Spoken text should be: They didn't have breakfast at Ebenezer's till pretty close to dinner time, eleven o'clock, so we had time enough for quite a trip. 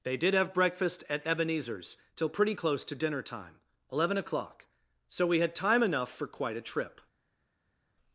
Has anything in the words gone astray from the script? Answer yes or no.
yes